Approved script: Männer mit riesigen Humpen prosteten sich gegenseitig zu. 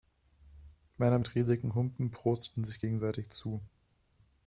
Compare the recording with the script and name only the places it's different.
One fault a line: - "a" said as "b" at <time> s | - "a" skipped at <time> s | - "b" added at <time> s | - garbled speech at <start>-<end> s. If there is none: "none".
none